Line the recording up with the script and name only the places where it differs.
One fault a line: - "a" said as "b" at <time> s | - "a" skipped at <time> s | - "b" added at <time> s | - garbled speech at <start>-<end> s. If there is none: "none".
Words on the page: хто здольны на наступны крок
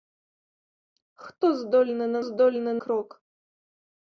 - "наступны" said as "здольны" at 2.3 s